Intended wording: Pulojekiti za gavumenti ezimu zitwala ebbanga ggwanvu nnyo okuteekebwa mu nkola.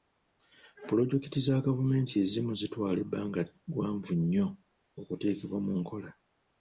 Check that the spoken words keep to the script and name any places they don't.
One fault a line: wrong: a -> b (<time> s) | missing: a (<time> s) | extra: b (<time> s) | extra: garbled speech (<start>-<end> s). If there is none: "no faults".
no faults